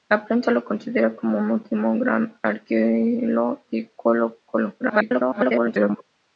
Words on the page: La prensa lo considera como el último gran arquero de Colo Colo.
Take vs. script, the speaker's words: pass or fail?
fail